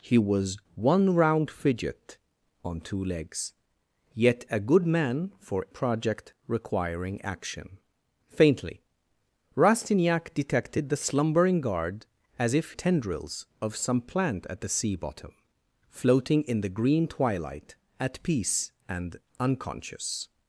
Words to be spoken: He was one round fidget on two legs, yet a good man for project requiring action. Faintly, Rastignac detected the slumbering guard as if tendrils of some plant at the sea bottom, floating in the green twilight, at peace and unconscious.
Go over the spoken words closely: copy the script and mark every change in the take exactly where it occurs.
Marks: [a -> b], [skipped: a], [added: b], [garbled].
He was one round fidget on two legs, yet a good man for project requiring action. Faintly, Rastignac detected the slumbering guard as if tendrils of some plant at the sea bottom, floating in the green twilight, at peace and unconscious.